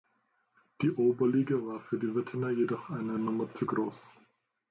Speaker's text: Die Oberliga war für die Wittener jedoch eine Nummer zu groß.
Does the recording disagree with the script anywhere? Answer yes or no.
no